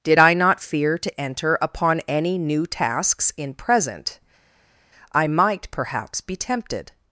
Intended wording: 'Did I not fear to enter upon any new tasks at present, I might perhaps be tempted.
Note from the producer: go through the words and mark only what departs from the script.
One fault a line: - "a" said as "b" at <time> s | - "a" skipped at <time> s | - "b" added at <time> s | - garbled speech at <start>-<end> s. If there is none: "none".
- "at" said as "in" at 3.4 s